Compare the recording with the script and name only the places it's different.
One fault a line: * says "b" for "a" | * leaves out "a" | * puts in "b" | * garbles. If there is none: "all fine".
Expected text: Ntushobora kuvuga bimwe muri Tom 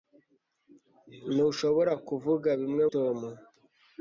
* leaves out "muri"